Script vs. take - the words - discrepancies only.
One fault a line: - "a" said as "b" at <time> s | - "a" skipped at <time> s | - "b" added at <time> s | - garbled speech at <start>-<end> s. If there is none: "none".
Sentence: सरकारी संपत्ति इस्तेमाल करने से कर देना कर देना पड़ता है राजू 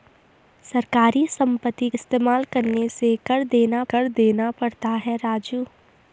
none